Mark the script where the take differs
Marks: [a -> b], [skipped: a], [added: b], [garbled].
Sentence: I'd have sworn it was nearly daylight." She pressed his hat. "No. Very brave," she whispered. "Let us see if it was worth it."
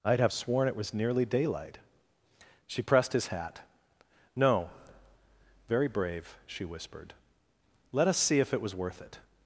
I'd have sworn it was nearly daylight." She pressed his hat. "No. Very brave," she whispered. "Let us see if it was worth it."